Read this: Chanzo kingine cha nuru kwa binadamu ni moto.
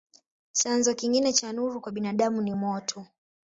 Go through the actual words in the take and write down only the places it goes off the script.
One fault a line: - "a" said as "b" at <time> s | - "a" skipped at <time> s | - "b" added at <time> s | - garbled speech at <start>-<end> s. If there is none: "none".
none